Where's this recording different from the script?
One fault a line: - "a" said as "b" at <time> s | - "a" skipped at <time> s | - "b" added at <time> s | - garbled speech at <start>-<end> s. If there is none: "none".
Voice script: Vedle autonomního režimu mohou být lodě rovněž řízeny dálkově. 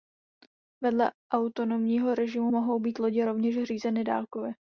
none